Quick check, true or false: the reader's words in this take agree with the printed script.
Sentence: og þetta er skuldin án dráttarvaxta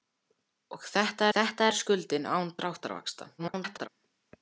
false